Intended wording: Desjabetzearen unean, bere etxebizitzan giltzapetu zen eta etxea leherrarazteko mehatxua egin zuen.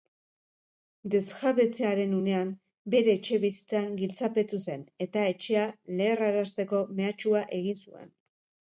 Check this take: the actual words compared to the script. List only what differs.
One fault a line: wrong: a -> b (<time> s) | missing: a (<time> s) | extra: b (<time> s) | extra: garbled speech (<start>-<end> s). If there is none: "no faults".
no faults